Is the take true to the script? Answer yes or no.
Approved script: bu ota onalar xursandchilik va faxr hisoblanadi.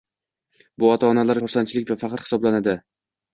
yes